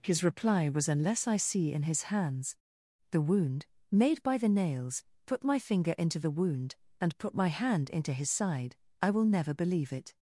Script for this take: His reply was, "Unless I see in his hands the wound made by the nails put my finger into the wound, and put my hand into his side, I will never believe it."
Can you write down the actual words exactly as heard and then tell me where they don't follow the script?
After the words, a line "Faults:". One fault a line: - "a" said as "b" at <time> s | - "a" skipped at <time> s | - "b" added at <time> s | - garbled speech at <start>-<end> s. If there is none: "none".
His reply was, "Unless I see in his hands the wound made by the nails put my finger into the wound, and put my hand into his side, I will never believe it."
Faults:
none